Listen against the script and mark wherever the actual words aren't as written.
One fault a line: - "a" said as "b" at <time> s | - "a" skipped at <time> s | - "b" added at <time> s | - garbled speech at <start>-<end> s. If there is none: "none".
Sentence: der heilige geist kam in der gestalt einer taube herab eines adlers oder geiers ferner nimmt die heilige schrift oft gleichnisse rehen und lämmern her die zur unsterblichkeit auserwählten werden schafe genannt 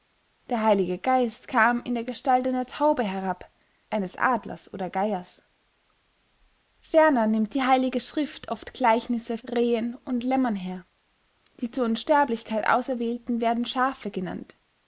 none